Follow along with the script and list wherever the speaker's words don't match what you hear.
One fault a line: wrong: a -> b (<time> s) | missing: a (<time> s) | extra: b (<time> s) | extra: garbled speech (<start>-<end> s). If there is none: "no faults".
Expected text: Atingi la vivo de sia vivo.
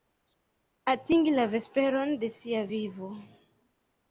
wrong: vivo -> vesperon (1.5 s)